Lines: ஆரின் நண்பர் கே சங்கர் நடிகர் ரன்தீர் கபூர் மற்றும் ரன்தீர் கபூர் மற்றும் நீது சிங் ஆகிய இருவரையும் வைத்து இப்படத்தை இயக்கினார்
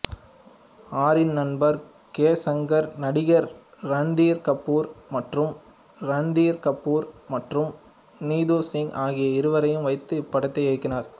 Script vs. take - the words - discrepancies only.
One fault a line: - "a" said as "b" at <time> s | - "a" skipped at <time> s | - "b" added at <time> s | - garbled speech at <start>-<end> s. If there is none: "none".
none